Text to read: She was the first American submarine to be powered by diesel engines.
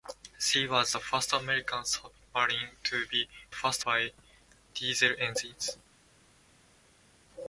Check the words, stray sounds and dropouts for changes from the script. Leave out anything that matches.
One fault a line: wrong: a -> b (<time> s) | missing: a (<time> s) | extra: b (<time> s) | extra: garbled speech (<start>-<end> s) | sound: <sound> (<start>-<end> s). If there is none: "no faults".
wrong: powered -> first (3.5 s)